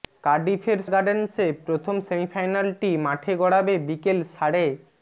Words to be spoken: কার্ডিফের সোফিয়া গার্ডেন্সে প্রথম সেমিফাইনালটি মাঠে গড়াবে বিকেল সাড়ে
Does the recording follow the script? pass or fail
fail